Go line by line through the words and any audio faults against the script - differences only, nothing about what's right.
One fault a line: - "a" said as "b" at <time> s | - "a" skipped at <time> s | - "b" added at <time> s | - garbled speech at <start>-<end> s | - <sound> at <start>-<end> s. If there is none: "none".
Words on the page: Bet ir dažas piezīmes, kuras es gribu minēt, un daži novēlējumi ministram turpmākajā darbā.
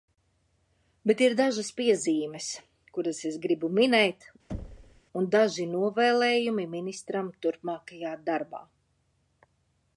- thud at 4.5-5.0 s